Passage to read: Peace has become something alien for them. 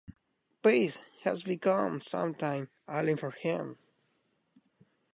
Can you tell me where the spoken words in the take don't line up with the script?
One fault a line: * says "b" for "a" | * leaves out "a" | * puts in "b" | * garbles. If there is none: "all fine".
* says "him" for "them"